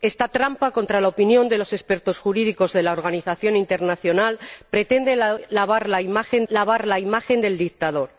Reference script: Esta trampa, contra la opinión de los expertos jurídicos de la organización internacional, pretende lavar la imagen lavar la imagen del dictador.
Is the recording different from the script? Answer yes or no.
no